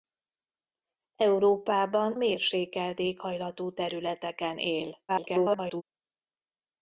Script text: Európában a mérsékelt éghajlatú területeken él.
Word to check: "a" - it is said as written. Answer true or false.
false